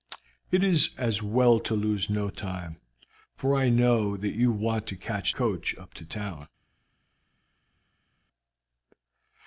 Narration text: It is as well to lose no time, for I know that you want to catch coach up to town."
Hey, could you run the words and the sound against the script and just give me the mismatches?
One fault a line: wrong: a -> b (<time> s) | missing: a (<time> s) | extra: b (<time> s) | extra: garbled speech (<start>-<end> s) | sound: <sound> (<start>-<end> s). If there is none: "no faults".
no faults